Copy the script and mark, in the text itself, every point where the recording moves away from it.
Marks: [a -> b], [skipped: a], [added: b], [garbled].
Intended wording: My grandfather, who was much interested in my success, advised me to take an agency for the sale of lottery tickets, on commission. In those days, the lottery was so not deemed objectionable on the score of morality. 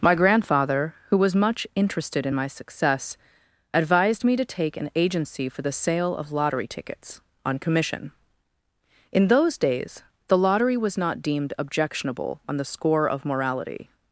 My grandfather, who was much interested in my success, advised me to take an agency for the sale of lottery tickets, on commission. In those days, the lottery was [skipped: so] not deemed objectionable on the score of morality.